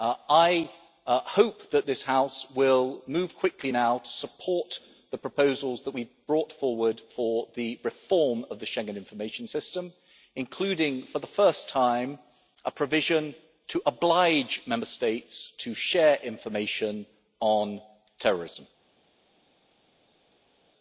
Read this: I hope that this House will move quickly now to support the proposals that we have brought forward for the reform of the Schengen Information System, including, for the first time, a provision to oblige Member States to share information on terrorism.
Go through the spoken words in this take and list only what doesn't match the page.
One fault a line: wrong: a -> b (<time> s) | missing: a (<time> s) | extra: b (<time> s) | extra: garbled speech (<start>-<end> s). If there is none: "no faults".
no faults